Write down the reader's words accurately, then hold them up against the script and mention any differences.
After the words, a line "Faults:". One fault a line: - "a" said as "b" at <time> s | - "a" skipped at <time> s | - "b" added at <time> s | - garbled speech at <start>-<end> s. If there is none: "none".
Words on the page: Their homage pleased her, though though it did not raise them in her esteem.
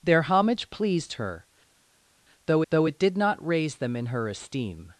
Their homage pleased her, though though it did not raise them in her esteem.
Faults:
none